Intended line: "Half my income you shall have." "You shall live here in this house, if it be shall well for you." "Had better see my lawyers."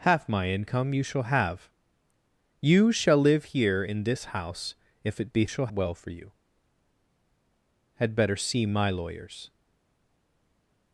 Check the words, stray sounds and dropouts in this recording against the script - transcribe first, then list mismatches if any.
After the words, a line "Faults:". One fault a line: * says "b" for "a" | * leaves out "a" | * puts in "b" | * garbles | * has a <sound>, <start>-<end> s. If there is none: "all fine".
"Half my income you shall have." "You shall live here in this house, if it be shall well for you." "Had better see my lawyers."
Faults:
all fine